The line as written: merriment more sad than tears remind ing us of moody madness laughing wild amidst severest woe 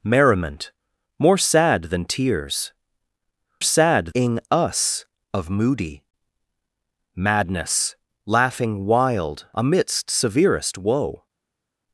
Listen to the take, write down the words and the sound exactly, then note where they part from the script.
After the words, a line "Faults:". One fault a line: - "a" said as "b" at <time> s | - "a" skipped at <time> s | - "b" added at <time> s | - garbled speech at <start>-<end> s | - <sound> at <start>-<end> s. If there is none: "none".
merriment more sad than tears sad ing us of moody madness laughing wild amidst severest woe
Faults:
- "remind" said as "sad" at 3.6 s